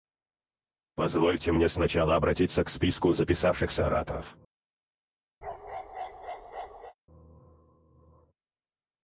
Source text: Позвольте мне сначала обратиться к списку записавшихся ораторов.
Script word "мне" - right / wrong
right